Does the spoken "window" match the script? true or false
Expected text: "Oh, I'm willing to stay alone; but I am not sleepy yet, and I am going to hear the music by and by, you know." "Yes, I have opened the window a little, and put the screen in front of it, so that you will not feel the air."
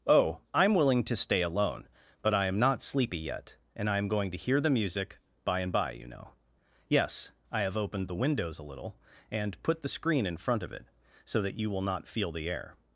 false